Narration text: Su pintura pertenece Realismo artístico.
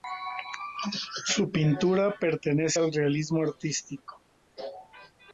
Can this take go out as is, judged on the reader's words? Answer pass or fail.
fail